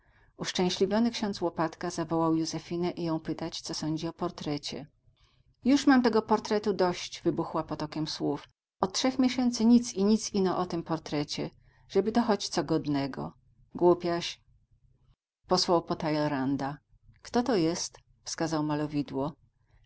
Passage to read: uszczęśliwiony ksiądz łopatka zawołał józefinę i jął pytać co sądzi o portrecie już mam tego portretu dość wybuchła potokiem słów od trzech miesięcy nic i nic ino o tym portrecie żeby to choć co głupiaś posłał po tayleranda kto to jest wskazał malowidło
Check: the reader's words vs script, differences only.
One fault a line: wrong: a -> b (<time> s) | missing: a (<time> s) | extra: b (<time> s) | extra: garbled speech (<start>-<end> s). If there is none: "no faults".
extra: godnego (12.6 s)